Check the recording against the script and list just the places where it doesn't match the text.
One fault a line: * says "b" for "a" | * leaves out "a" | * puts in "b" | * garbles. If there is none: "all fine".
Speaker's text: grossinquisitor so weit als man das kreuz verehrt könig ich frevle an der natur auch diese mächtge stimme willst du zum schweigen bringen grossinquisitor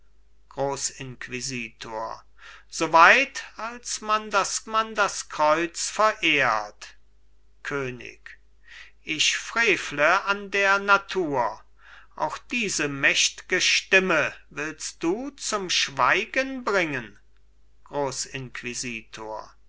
* puts in "man das"